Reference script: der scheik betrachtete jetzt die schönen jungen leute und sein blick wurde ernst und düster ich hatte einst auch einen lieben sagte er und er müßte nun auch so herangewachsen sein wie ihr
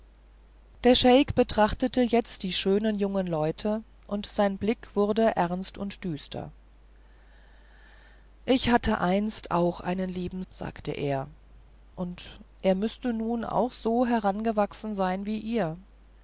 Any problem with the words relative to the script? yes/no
no